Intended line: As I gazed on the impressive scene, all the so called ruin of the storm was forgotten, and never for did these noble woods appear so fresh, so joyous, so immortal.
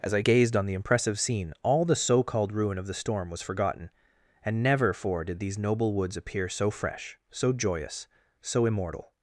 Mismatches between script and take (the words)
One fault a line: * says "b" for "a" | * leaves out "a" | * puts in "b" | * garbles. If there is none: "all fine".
all fine